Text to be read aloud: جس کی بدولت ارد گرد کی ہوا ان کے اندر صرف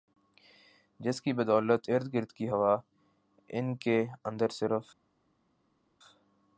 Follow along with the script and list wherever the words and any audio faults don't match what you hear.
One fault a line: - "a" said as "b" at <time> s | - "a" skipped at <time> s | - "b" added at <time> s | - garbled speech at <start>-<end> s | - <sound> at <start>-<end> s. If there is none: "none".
none